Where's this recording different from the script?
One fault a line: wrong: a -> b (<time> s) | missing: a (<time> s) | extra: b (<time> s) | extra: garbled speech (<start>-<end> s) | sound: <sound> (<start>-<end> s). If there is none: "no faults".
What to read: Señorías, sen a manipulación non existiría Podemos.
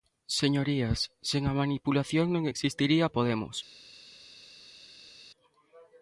no faults